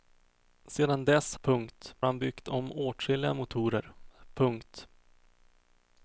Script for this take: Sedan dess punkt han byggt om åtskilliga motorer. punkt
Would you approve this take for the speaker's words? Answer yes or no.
yes